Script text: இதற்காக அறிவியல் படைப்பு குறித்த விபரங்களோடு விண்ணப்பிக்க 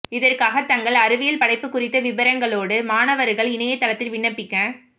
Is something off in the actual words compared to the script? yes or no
yes